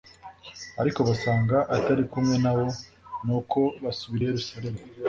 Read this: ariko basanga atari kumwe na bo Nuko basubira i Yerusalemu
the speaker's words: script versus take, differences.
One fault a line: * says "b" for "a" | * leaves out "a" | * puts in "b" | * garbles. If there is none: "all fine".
all fine